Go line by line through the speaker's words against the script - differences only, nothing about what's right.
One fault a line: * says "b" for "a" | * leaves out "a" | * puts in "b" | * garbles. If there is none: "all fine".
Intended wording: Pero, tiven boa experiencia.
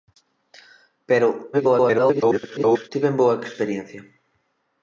* garbles